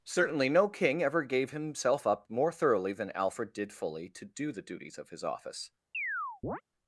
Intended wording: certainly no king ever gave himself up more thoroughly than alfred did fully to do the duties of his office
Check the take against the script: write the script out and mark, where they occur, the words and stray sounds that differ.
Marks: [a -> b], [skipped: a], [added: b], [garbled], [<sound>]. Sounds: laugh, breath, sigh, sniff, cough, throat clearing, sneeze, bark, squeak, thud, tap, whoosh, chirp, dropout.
certainly no king ever gave himself up more thoroughly than alfred did fully to do the duties of his office [chirp]